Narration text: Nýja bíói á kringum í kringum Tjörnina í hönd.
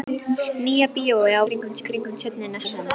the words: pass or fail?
pass